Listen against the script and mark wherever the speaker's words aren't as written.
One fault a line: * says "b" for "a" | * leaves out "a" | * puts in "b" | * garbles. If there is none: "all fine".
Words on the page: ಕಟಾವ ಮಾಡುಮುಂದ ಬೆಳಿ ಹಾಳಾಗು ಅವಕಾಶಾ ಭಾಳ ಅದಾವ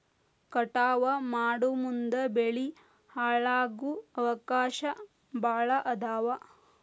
all fine